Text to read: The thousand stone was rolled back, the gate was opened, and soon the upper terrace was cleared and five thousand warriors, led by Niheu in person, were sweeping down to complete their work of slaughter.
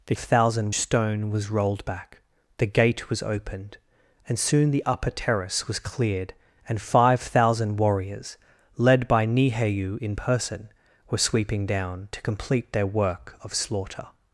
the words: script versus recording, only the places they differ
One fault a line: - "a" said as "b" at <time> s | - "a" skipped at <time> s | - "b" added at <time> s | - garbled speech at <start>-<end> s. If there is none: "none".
none